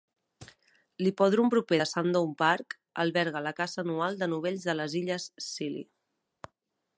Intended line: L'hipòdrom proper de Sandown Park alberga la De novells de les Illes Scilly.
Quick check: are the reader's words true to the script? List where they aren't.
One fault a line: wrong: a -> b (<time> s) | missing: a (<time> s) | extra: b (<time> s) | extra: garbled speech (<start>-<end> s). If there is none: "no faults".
extra: Caça anual (3.6 s)